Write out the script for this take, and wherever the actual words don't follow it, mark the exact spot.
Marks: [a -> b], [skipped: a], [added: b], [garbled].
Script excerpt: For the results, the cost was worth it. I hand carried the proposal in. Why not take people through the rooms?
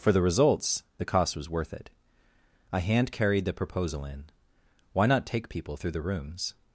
For the results, the cost was worth it. I hand carried the proposal in. Why not take people through the rooms?